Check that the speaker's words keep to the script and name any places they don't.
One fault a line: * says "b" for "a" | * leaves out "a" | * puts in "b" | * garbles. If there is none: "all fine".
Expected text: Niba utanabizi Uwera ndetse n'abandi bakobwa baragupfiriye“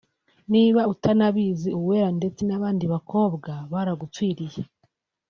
all fine